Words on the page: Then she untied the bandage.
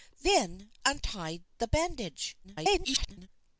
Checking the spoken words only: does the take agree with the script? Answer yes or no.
no